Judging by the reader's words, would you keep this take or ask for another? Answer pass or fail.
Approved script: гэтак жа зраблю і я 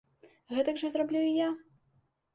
pass